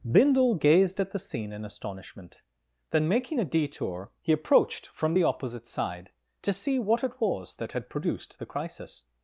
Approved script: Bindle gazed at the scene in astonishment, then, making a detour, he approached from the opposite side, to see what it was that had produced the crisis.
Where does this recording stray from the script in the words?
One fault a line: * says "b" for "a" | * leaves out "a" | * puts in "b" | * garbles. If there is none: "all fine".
all fine